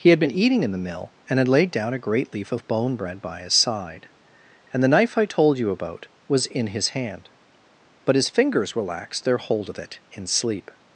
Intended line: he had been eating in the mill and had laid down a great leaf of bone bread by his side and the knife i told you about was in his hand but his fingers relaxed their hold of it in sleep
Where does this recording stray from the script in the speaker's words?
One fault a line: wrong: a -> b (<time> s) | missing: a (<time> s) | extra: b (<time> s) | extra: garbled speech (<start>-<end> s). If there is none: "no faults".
no faults